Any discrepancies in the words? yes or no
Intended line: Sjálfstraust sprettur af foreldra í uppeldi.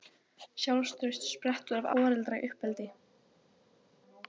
no